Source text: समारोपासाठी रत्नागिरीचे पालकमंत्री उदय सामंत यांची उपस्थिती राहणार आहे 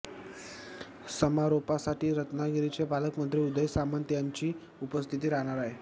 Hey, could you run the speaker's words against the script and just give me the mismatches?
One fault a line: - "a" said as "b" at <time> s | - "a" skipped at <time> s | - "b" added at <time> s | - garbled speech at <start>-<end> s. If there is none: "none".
none